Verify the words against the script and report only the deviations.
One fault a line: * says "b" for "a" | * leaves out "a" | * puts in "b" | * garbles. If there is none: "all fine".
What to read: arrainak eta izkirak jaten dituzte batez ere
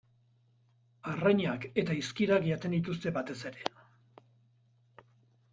all fine